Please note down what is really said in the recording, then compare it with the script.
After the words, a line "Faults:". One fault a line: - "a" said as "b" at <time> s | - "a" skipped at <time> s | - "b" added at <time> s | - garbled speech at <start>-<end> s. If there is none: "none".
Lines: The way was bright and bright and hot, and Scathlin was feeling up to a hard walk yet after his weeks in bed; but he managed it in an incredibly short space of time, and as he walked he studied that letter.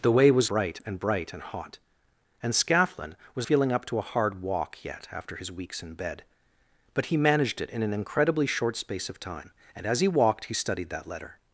The way was bright and bright and hot, and Scathlin was feeling up to a hard walk yet after his weeks in bed; but he managed it in an incredibly short space of time, and as he walked he studied that letter.
Faults:
none